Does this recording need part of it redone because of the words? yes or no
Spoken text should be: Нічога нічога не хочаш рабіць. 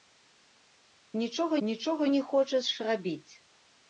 no